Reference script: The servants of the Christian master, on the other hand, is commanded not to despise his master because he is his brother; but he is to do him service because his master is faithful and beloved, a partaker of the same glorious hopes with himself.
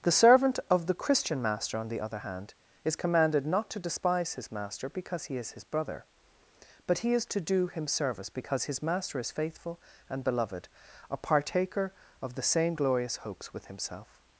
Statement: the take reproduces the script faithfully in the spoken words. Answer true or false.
false